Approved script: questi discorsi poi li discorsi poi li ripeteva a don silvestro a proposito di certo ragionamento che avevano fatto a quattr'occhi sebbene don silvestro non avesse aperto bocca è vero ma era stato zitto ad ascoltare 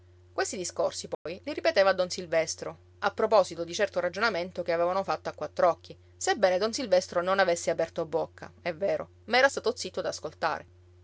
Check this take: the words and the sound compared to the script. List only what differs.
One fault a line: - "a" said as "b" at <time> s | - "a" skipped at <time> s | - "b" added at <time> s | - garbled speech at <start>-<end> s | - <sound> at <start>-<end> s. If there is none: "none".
- dropout at 1.1-1.3 s
- "discorsi poi li" skipped at 1.5 s